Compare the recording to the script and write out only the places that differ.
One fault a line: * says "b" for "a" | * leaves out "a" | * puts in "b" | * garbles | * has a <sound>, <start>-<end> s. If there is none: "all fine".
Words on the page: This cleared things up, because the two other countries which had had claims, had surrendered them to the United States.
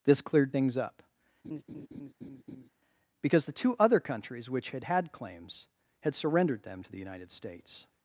* has a laugh, 1.4-2.7 s